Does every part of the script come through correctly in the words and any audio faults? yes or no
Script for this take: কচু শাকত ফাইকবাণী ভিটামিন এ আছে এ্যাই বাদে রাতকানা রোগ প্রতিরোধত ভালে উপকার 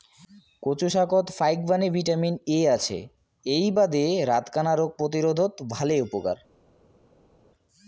yes